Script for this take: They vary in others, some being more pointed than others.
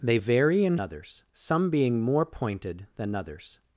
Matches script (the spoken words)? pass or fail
pass